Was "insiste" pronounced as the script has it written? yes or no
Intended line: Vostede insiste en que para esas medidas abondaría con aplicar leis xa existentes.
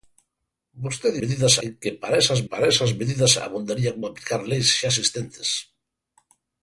no